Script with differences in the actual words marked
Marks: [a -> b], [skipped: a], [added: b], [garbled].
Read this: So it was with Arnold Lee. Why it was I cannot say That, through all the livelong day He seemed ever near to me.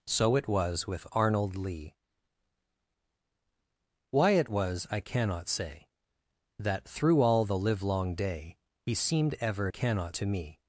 So it was with Arnold Lee. Why it was I cannot say That, through all the livelong day He seemed ever [near -> cannot] to me.